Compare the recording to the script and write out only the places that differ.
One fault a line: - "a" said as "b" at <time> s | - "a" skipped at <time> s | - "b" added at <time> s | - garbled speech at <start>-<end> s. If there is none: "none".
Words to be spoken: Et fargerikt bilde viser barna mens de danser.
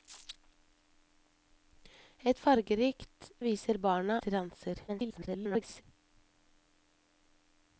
- "bilde" skipped at 3.3 s
- "mens" skipped at 4.2 s
- garbled speech at 4.9-5.8 s